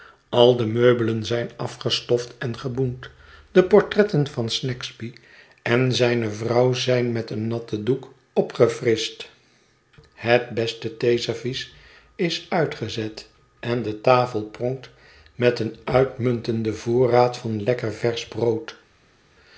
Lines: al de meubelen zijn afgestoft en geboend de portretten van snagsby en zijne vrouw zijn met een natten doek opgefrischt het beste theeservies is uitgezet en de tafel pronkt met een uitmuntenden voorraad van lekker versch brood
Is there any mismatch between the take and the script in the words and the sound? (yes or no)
no